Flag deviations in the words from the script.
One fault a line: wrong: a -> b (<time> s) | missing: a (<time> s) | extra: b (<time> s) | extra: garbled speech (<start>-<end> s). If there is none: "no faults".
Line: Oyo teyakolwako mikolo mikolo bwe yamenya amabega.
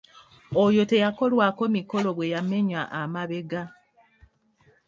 missing: mikolo (2.1 s)